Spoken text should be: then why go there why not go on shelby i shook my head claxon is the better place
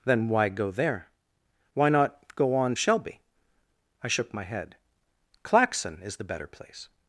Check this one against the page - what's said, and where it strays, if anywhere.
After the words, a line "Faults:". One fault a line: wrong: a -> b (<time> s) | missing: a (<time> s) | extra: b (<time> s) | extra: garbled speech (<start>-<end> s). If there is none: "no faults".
then why go there why not go on shelby i shook my head claxon is the better place
Faults:
no faults